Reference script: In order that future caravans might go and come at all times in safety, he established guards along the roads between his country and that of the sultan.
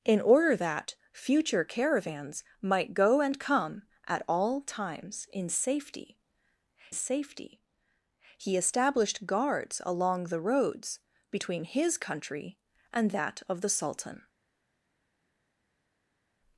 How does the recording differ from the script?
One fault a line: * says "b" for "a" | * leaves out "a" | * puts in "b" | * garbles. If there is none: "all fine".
* puts in "safety"